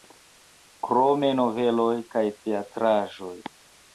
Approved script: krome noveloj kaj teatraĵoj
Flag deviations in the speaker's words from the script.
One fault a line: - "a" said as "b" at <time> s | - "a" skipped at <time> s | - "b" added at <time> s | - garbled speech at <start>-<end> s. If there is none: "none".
none